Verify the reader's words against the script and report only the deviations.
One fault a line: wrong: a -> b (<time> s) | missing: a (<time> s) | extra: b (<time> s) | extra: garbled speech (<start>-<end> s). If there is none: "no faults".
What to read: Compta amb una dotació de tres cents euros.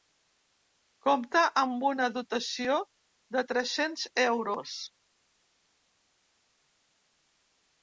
no faults